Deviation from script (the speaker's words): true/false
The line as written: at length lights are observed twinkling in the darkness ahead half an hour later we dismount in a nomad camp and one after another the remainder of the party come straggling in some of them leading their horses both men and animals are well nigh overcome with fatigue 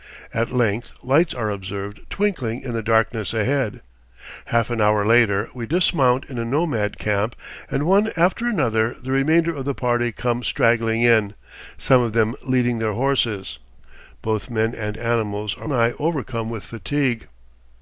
true